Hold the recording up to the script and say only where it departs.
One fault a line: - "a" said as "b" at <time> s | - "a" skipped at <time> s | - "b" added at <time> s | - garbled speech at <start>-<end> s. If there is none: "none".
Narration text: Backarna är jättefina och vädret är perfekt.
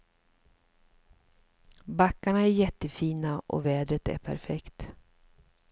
none